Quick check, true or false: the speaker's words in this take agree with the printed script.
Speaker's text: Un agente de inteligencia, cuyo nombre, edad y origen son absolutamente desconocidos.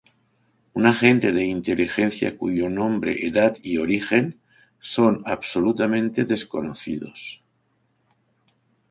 true